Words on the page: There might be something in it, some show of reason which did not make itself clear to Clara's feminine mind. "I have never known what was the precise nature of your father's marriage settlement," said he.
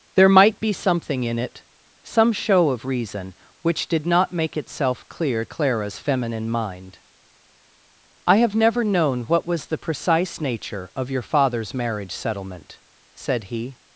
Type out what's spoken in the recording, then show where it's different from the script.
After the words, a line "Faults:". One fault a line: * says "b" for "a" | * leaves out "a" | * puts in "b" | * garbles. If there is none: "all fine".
There might be something in it, some show of reason which did not make itself clear Clara's feminine mind. "I have never known what was the precise nature of your father's marriage settlement," said he.
Faults:
* leaves out "to"